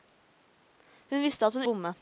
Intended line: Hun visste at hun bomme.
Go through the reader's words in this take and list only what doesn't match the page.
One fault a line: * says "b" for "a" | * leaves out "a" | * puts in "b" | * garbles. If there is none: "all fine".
all fine